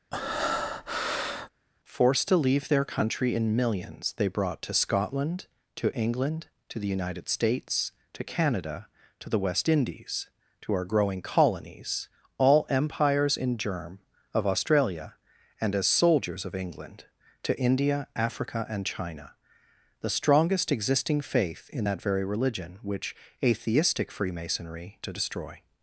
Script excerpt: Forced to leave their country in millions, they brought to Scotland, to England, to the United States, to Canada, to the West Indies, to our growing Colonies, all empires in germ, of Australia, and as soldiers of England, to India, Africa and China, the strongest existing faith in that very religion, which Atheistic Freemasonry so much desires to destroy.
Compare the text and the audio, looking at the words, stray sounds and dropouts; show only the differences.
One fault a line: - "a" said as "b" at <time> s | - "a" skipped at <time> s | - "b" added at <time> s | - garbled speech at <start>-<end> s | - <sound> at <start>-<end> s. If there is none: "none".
- breath at 0.1-1.5 s
- "so much desires" skipped at 25.0 s